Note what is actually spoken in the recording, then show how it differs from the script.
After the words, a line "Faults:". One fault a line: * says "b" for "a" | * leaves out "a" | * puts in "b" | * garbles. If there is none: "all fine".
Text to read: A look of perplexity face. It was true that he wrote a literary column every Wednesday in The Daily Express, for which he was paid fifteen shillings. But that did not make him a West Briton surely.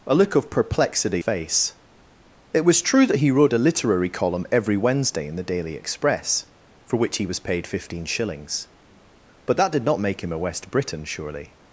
A look of perplexity face. It was true that he wrote a literary column every Wednesday in The Daily Express, for which he was paid fifteen shillings. But that did not make him a West Briton surely.
Faults:
all fine